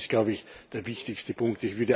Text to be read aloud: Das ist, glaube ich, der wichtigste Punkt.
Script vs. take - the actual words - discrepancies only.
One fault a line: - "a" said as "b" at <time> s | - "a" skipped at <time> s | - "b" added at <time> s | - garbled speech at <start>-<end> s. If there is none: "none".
none